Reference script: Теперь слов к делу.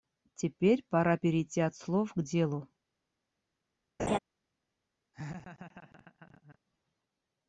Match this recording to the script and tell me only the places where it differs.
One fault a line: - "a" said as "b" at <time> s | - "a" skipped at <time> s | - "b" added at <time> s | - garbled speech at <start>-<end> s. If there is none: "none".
- "пора перейти от" added at 0.9 s